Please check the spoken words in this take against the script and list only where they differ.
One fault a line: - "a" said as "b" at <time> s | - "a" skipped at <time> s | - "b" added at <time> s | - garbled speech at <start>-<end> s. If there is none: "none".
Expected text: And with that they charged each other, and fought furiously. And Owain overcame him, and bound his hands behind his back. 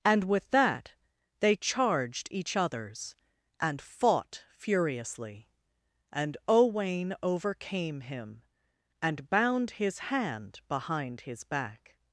- "other" said as "others" at 2.5 s
- "hands" said as "hand" at 10.0 s